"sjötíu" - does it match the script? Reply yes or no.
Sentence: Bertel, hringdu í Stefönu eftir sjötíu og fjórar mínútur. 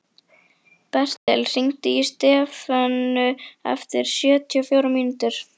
yes